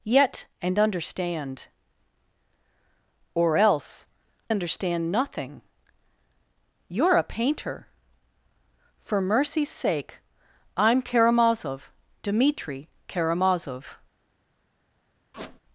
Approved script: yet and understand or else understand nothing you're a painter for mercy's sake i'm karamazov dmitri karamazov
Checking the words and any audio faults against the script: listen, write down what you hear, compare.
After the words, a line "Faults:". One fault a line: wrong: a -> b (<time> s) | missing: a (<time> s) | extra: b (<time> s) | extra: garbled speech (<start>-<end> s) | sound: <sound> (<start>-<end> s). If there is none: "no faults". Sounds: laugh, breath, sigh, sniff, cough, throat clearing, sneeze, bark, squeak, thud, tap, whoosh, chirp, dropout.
yet and understand or else understand nothing you're a painter for mercy's sake i'm karamazov dmitri karamazov
Faults:
sound: squeak (15.3-15.6 s)